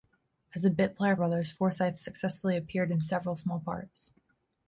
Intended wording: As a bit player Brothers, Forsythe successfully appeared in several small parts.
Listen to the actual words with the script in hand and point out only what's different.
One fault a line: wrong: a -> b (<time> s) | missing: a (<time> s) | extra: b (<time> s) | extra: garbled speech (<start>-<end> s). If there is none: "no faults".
no faults